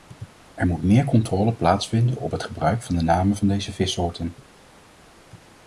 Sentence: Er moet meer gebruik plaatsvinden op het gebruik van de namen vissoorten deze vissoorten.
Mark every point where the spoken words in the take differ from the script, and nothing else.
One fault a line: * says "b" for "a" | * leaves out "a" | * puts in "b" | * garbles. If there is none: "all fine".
* says "controle" for "gebruik"
* says "van" for "vissoorten"